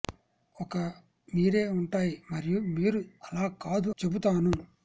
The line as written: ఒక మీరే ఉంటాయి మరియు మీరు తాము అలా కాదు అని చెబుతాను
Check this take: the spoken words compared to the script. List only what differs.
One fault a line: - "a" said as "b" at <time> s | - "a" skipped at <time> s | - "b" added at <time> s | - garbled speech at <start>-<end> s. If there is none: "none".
- "తాము" skipped at 3.0 s
- "అని" skipped at 3.9 s